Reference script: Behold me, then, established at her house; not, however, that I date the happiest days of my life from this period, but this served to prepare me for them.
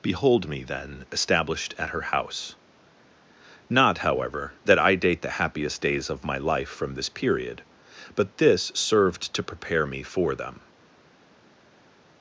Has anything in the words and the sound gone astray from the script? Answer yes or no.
no